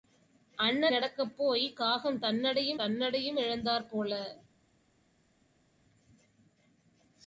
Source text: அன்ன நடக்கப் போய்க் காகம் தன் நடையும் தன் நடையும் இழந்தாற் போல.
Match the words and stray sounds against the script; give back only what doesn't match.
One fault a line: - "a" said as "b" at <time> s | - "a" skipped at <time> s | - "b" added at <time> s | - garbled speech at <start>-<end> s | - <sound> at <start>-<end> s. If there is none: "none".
none